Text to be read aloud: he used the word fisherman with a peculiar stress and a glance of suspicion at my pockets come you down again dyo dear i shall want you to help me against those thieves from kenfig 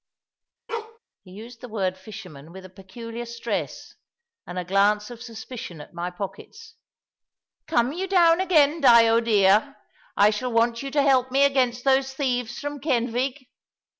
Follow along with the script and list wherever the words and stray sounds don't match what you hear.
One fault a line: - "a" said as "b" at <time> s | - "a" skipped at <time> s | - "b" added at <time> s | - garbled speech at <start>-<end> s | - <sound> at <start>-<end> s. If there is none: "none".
- bark at 0.7-1.0 s